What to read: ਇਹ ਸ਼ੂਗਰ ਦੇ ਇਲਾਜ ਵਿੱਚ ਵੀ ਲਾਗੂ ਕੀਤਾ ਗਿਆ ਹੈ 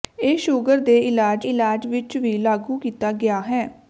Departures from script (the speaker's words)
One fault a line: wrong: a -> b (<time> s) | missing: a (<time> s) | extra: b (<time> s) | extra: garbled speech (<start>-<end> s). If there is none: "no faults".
extra: ਇਲਾਜ (1.4 s)